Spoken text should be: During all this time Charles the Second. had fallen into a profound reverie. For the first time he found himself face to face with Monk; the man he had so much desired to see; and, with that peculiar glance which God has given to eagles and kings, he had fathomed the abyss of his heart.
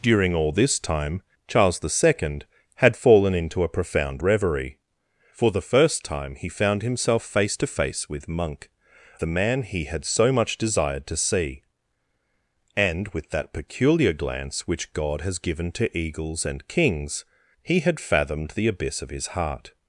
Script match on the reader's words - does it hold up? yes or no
yes